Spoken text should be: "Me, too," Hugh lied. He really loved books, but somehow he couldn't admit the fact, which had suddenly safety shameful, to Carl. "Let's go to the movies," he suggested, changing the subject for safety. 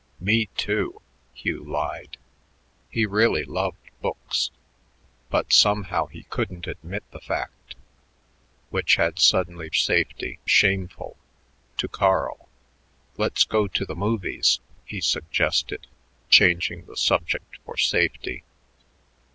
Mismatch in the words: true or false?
false